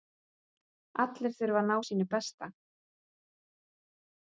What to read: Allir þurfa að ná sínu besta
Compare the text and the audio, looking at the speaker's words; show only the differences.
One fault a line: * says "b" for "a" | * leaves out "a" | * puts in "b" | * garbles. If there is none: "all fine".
all fine